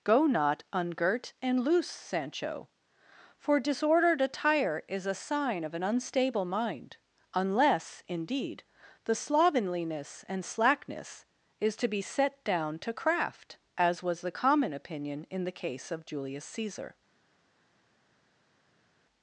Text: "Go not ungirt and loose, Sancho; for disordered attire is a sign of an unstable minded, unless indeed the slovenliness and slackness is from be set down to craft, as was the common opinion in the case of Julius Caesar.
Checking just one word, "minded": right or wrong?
wrong